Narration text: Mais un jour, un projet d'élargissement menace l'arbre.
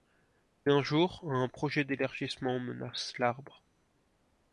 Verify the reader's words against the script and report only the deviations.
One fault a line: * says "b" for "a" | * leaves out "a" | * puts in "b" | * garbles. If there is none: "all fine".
all fine